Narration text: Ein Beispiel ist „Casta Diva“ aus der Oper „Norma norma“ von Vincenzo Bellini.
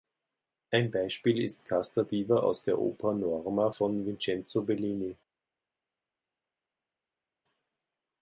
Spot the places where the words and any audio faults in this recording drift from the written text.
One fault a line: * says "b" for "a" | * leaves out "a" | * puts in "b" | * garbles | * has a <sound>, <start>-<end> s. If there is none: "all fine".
* leaves out "norma"